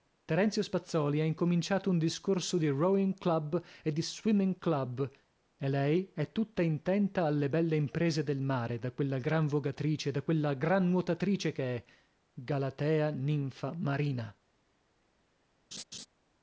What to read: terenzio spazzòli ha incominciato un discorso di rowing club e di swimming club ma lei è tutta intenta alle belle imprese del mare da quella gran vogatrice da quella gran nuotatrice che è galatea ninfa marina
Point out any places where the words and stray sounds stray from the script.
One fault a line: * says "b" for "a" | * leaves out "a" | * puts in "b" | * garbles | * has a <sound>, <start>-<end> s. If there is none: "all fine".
* says "e" for "ma"
* has a laugh, 15.7-16.1 s